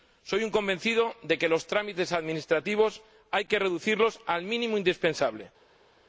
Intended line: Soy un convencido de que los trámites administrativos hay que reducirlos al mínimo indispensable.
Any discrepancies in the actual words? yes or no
no